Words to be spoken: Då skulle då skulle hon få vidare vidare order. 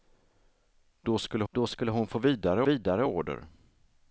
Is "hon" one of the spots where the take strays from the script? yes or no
no